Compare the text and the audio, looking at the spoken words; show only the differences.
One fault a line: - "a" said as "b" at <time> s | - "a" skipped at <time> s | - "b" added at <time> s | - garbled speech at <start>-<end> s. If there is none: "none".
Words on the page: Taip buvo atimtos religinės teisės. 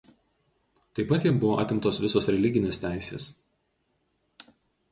- "pat jam" added at 1.1 s
- "visos" added at 2.0 s